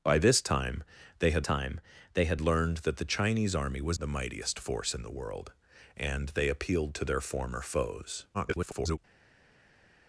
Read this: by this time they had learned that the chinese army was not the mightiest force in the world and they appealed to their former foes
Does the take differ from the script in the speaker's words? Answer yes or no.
yes